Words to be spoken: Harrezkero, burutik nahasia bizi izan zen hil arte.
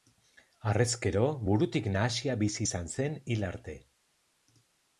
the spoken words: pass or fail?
pass